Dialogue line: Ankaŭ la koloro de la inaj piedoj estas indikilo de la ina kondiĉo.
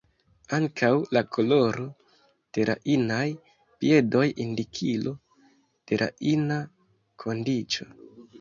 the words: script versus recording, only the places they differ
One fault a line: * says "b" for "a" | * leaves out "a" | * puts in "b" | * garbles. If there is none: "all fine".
* leaves out "estas"